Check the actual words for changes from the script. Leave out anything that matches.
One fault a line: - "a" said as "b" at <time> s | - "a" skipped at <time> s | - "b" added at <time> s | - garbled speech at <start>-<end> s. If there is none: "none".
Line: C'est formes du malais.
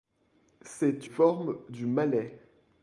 none